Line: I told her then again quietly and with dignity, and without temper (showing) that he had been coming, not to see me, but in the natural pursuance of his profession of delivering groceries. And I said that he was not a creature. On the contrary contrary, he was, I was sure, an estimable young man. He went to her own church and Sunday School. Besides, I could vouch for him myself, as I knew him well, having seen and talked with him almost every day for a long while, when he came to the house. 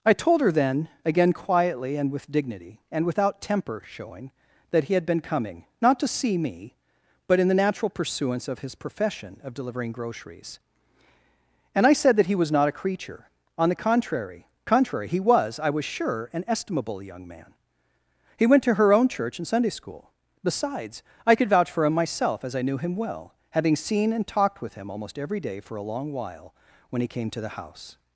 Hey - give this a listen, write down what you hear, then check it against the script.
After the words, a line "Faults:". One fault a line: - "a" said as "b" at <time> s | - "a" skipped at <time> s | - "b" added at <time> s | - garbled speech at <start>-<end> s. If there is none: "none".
I told her then again quietly and with dignity, and without temper (showing) that he had been coming, not to see me, but in the natural pursuance of his profession of delivering groceries. And I said that he was not a creature. On the contrary contrary, he was, I was sure, an estimable young man. He went to her own church and Sunday School. Besides, I could vouch for him myself, as I knew him well, having seen and talked with him almost every day for a long while, when he came to the house.
Faults:
none